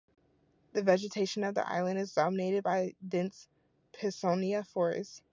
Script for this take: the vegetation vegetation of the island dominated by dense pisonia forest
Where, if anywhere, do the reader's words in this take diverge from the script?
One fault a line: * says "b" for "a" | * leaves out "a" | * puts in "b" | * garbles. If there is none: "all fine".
* leaves out "vegetation"
* puts in "is"